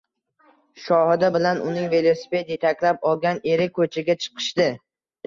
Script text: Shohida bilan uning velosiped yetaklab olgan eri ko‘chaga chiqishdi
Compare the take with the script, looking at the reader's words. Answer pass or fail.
pass